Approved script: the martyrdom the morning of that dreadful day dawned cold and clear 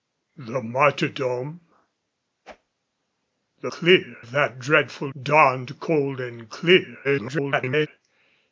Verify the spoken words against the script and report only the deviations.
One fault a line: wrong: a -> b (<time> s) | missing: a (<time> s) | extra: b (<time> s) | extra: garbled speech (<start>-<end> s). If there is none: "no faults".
wrong: morning -> clear (3.7 s)
missing: day (5.1 s)
extra: garbled speech (7.0-7.9 s)